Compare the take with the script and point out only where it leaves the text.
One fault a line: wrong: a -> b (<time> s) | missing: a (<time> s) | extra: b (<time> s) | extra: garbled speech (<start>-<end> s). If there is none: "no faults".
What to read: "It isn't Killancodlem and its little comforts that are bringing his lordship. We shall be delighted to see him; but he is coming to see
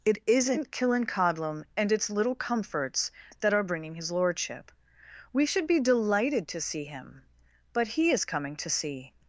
wrong: shall -> should (5.5 s)